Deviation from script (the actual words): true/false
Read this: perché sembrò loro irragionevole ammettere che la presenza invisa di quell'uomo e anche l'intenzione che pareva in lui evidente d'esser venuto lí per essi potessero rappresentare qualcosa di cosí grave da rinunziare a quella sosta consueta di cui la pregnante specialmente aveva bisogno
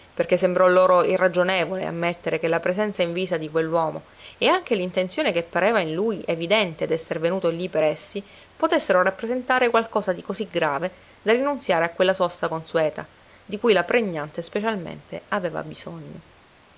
false